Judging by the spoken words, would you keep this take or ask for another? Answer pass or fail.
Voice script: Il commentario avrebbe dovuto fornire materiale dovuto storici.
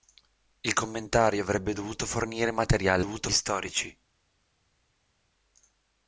pass